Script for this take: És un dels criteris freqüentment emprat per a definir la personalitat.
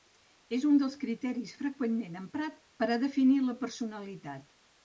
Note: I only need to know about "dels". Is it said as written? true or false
true